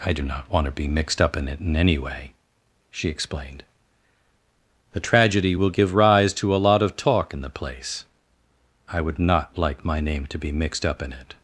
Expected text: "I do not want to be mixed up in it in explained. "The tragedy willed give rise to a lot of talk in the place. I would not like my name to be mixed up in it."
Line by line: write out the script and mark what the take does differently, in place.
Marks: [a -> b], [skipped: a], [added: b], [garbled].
"I do not want to be mixed up in it in [added: any way she] explained. "The tragedy [willed -> will] give rise to a lot of talk in the place. I would not like my name to be mixed up in it."